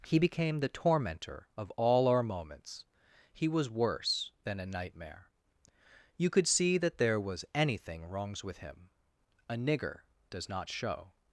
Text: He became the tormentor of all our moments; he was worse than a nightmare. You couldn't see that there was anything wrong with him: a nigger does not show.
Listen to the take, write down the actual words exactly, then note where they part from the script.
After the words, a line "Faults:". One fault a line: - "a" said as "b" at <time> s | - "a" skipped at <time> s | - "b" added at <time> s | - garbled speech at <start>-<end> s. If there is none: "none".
He became the tormentor of all our moments; he was worse than a nightmare. You could see that there was anything wrongs with him: a nigger does not show.
Faults:
- "couldn't" said as "could" at 6.3 s
- "wrong" said as "wrongs" at 8.1 s